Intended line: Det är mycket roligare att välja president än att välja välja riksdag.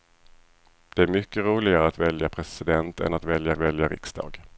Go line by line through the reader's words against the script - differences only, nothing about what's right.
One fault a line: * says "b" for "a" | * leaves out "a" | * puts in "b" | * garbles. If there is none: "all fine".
all fine